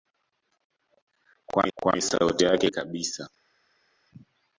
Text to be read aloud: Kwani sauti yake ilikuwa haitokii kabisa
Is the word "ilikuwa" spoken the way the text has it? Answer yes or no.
no